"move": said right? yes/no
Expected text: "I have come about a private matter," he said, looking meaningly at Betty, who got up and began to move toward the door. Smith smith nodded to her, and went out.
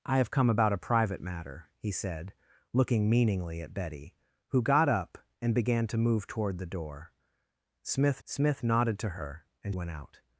yes